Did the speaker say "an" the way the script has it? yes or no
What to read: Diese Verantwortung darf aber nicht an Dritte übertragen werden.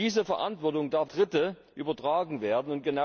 no